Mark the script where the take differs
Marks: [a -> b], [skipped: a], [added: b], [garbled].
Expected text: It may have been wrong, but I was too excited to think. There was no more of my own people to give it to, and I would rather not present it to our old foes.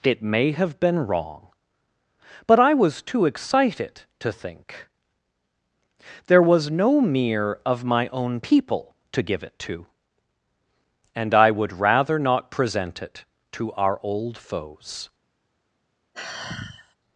It may have been wrong, but I was too excited to think. There was no [more -> mere] of my own people to give it to, and I would rather not present it to our old foes.